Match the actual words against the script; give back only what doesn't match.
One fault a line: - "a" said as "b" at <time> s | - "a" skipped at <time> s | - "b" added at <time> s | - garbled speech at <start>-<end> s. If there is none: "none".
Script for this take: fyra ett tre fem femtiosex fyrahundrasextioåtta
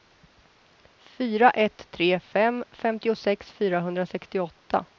none